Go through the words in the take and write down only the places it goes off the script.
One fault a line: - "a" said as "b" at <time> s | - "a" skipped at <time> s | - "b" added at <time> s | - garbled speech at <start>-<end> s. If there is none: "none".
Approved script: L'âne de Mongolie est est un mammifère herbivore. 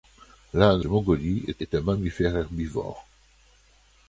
none